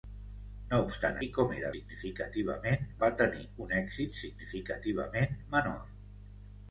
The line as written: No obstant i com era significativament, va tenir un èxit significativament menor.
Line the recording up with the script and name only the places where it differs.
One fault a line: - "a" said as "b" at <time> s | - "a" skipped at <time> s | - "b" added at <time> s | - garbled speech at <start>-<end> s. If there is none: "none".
none